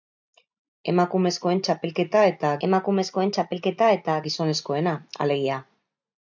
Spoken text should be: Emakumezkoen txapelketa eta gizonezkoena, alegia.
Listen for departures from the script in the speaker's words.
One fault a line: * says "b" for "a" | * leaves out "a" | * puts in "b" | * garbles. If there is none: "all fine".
* puts in "emakumezkoen txapelketa eta"